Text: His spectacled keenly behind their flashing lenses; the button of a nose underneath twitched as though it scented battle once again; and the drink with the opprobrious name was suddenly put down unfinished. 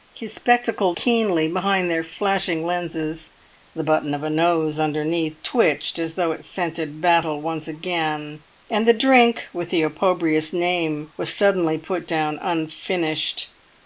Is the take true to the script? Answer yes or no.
yes